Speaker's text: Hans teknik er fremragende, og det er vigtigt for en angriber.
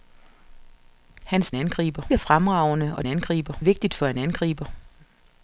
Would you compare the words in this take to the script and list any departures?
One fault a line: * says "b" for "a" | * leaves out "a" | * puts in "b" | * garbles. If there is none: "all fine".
* says "angriber" for "teknik"
* says "angriber" for "det"